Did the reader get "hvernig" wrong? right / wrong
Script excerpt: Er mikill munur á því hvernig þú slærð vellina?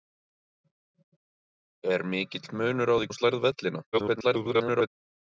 wrong